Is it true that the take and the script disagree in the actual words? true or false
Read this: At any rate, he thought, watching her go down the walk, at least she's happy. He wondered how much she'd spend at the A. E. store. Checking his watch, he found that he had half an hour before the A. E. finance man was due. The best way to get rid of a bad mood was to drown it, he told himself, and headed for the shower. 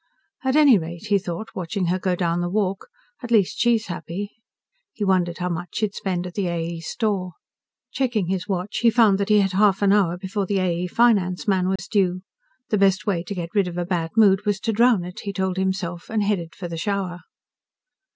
false